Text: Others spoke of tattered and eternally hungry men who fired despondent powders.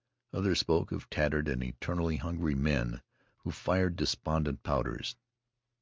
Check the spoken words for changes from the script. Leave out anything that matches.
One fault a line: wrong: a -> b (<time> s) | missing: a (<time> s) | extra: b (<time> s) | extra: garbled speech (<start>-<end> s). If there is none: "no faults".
no faults